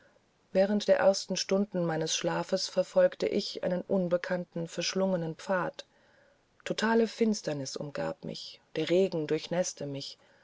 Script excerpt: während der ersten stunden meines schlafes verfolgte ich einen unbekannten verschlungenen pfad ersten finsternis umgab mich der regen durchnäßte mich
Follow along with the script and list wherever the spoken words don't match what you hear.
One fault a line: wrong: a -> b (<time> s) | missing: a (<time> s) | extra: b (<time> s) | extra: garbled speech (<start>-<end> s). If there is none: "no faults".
wrong: ersten -> totale (6.6 s)